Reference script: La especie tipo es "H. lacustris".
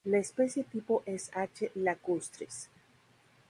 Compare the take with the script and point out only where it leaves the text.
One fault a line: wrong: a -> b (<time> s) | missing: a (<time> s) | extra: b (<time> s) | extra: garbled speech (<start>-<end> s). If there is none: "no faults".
no faults